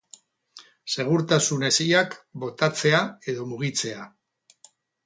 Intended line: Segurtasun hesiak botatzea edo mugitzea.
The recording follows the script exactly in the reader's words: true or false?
true